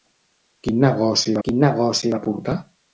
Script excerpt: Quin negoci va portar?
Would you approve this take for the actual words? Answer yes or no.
no